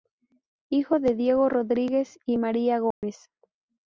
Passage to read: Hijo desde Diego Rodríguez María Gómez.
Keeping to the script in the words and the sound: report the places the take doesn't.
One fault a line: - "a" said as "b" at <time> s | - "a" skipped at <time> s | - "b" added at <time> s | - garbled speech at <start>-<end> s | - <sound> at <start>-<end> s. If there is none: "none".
- "desde" said as "de" at 1.0 s
- "y" added at 2.2 s
- dropout at 2.9-3.0 s